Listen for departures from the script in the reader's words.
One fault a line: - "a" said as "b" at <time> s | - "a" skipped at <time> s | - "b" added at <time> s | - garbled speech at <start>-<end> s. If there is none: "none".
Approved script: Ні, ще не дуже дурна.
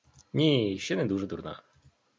none